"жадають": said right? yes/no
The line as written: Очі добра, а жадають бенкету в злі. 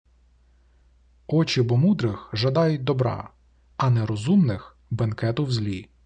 no